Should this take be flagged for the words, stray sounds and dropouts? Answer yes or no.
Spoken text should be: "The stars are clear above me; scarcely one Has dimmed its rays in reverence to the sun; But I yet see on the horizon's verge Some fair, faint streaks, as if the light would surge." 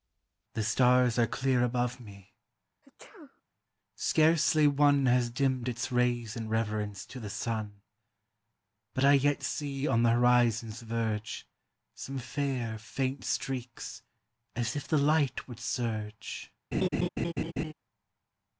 yes